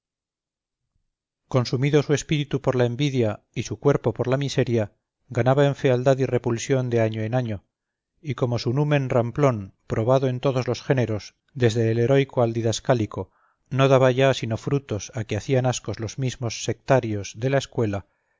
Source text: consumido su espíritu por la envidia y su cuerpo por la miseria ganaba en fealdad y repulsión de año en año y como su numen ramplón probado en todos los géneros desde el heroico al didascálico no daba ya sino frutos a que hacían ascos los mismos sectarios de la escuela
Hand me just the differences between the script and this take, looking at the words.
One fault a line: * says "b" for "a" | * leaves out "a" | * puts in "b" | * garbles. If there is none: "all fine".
all fine